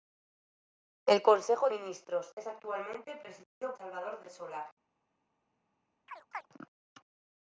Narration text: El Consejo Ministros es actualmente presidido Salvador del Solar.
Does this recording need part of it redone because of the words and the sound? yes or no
yes